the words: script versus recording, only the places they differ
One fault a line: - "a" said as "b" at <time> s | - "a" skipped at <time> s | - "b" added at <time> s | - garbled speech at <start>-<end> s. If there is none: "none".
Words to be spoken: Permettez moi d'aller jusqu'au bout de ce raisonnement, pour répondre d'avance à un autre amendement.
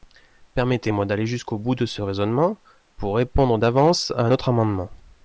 none